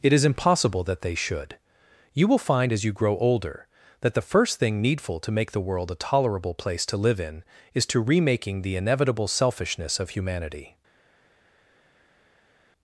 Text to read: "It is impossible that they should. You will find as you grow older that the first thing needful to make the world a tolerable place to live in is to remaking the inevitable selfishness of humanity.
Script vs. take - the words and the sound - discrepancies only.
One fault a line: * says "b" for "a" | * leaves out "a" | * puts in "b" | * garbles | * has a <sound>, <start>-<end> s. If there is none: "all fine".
all fine